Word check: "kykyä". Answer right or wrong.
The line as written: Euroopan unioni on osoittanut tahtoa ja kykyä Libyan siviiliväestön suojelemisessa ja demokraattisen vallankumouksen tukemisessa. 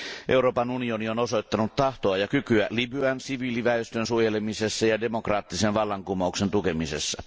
right